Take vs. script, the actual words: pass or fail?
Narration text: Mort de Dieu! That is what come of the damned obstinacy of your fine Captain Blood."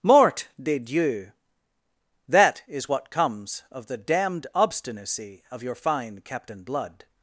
fail